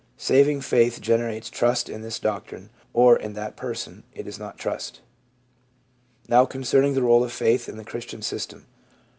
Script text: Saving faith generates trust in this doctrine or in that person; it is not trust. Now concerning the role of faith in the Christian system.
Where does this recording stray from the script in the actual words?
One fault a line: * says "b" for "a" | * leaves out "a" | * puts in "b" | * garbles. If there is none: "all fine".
all fine